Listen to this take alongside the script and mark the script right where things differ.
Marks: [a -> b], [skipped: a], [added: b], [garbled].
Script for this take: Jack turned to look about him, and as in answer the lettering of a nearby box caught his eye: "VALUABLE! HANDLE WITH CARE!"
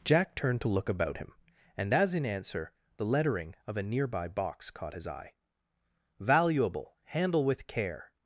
Jack turned to look about him, and as in answer the lettering of a nearby box caught his eye: "VALUABLE! HANDLE WITH CARE!"